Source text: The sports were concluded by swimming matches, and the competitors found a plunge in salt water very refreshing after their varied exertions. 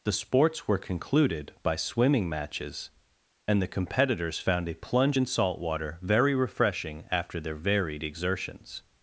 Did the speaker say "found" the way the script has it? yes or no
yes